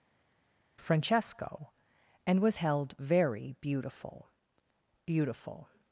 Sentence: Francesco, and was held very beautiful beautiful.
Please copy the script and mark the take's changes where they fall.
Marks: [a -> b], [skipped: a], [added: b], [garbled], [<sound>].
Francesco, and was held very beautiful beautiful.